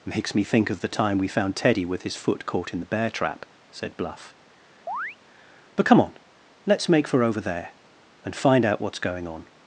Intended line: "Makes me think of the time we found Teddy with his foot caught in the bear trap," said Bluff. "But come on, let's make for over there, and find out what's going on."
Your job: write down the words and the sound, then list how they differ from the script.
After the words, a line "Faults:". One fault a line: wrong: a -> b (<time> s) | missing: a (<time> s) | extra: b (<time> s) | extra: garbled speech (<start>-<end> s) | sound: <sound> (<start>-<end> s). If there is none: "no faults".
"Makes me think of the time we found Teddy with his foot caught in the bear trap," said Bluff. "But come on, let's make for over there, and find out what's going on."
Faults:
sound: chirp (4.9-5.2 s)